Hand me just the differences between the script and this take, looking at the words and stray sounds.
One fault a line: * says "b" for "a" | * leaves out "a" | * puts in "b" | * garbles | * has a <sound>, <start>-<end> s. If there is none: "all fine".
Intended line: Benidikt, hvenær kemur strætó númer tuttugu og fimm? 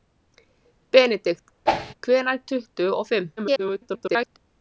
* has a whoosh, 1.7-1.9 s
* leaves out "kemur strætó númer"
* garbles